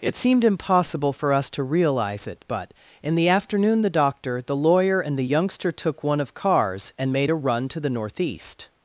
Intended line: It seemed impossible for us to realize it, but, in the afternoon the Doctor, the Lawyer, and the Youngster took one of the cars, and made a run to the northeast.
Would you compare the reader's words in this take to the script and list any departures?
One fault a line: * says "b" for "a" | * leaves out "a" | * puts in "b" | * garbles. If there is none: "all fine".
* leaves out "the"